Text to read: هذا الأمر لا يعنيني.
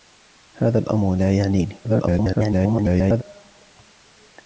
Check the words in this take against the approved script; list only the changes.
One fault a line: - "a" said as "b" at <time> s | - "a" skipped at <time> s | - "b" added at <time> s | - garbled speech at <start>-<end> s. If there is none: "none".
- garbled speech at 1.8-3.2 s